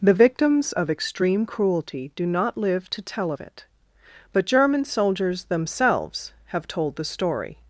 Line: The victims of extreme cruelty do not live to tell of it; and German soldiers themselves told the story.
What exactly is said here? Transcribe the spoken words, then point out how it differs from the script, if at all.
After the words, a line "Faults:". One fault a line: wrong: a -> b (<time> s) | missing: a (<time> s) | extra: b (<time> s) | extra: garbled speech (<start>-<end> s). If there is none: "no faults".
The victims of extreme cruelty do not live to tell of it; but German soldiers themselves have told the story.
Faults:
wrong: and -> but (4.3 s)
extra: have (6.5 s)